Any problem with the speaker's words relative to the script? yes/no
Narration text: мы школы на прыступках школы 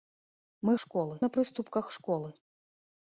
no